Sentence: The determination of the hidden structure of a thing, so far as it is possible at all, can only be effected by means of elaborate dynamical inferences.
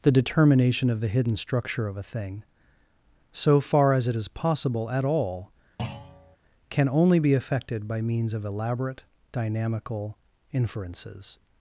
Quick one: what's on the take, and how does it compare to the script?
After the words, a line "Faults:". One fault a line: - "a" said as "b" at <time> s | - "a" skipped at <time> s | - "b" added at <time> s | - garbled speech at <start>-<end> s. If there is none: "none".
The determination of the hidden structure of a thing, so far as it is possible at all, can only be effected by means of elaborate dynamical inferences.
Faults:
none